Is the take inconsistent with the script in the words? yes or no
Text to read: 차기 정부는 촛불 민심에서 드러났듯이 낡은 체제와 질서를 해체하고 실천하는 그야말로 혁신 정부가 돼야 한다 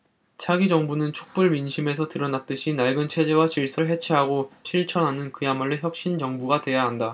no